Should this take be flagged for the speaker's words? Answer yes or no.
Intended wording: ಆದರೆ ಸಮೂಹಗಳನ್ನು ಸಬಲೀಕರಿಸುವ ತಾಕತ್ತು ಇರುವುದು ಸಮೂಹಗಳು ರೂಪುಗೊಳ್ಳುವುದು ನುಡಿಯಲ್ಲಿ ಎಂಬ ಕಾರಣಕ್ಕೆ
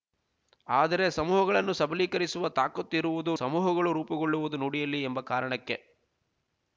no